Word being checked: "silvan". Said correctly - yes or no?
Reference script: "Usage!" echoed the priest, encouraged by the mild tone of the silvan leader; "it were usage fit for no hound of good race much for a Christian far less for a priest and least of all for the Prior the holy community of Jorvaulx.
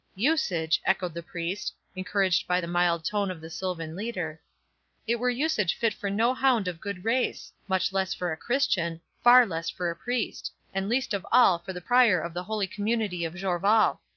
yes